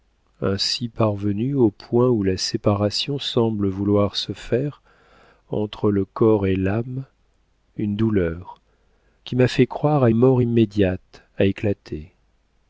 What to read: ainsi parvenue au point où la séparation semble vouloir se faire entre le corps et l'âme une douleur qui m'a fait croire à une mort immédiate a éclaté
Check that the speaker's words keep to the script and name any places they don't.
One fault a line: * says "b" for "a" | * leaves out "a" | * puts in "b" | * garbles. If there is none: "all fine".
* leaves out "une"